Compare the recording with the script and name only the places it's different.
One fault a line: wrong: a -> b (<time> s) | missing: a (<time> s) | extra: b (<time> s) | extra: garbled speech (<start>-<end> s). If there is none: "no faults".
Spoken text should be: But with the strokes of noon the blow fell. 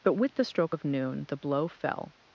wrong: strokes -> stroke (0.4 s)